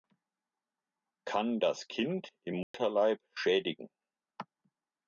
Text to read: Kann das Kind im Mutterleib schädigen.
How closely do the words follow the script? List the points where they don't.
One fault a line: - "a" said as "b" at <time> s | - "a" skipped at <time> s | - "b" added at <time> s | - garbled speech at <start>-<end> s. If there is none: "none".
none